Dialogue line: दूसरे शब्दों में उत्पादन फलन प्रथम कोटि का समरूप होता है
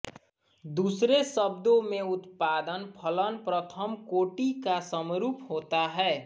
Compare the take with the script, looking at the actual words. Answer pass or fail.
pass